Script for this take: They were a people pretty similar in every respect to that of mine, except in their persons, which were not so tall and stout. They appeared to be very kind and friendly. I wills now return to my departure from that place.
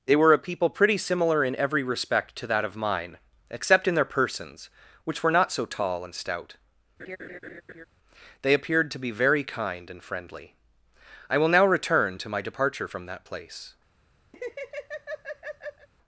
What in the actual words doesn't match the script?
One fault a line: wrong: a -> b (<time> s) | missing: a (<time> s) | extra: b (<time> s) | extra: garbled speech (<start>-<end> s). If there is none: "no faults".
wrong: wills -> will (11.4 s)